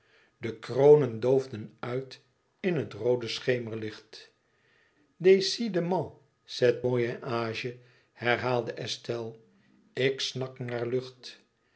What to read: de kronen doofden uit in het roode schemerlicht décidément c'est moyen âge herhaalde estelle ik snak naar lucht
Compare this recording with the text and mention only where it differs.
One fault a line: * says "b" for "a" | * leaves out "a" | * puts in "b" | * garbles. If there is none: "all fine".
all fine